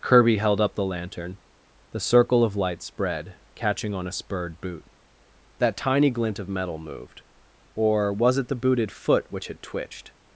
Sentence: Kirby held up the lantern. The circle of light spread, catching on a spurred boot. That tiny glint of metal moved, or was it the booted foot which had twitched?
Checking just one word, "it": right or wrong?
right